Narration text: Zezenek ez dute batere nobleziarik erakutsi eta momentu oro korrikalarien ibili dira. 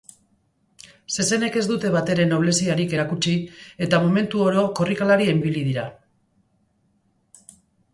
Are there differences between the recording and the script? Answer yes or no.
no